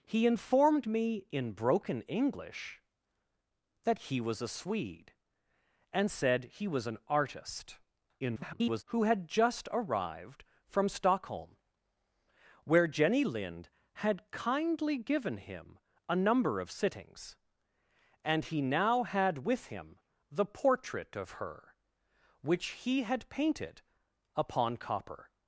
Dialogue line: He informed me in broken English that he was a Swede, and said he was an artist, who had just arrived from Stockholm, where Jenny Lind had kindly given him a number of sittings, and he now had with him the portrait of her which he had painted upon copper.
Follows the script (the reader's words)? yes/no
no